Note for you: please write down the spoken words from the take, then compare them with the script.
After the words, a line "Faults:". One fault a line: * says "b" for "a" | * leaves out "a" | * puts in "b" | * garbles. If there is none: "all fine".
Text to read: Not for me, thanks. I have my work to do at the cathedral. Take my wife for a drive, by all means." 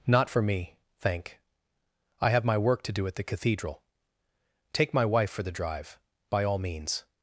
Not for me, thank. I have my work to do at the cathedral. Take my wife for the drive, by all means."
Faults:
* says "thank" for "thanks"
* says "the" for "a"